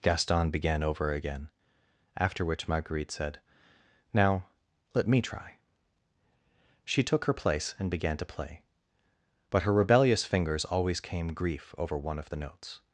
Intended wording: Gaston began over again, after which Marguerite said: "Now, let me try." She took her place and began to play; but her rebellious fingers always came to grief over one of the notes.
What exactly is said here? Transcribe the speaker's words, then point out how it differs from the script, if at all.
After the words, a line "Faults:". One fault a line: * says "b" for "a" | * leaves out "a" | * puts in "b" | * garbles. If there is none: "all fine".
Gaston began over again, after which Marguerite said: "Now, let me try." She took her place and began to play; but her rebellious fingers always came grief over one of the notes.
Faults:
* leaves out "to"